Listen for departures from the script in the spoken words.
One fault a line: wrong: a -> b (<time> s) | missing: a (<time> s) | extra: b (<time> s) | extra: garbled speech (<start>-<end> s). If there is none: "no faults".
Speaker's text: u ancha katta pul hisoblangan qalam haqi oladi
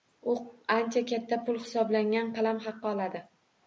no faults